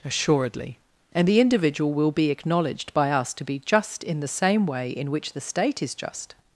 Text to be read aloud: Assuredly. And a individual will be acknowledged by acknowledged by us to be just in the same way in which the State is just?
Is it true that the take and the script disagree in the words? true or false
true